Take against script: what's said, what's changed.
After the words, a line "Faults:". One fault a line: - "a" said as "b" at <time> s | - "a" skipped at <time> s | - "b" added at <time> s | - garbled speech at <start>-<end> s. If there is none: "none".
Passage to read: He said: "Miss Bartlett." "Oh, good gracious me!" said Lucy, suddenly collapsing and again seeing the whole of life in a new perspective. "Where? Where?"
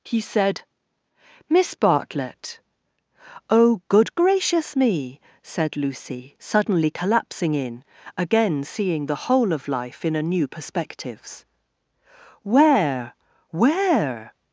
He said: "Miss Bartlett." "Oh, good gracious me!" said Lucy, suddenly collapsing in again seeing the whole of life in a new perspectives. "Where? Where?"
Faults:
- "and" said as "in" at 7.5 s
- "perspective" said as "perspectives" at 10.5 s